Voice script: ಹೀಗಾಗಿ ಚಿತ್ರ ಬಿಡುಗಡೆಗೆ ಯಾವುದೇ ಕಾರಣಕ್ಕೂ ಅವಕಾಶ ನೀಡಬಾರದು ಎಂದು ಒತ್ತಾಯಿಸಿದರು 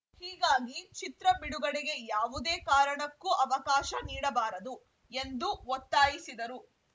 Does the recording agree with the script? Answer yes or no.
yes